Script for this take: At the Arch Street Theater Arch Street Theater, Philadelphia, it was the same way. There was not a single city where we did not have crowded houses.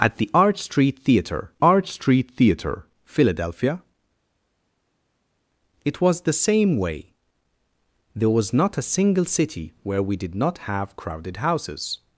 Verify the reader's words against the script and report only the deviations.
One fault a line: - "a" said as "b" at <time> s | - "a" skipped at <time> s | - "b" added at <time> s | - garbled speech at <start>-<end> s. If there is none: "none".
none